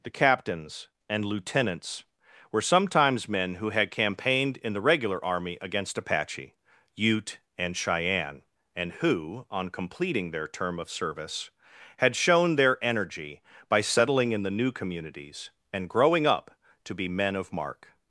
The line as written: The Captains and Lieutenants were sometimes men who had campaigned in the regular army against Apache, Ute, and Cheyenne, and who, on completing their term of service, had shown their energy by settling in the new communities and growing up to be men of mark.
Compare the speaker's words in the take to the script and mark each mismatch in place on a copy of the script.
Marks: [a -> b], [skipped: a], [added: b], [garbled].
The Captains and Lieutenants were sometimes men who had campaigned in the regular army against Apache, Ute, and Cheyenne, and who, on completing their term of service, had shown their energy by settling in the new communities and growing up to be men of mark.